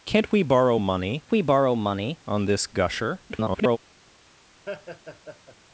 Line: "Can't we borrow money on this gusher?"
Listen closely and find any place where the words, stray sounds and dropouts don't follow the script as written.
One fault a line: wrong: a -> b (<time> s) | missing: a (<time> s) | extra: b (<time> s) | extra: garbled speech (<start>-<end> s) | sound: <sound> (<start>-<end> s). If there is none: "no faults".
extra: we borrow money (1.3 s)
extra: garbled speech (3.3-3.8 s)
sound: laugh (4.7-5.6 s)